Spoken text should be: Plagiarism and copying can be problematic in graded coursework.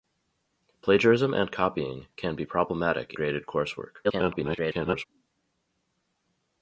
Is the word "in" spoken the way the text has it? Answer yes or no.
no